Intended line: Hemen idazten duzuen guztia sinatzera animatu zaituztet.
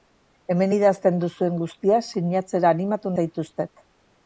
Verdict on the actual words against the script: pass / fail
pass